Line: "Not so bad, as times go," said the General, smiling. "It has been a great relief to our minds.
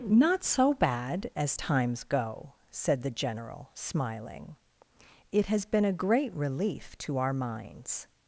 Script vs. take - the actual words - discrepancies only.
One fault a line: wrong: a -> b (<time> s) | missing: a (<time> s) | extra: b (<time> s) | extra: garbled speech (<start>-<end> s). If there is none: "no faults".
no faults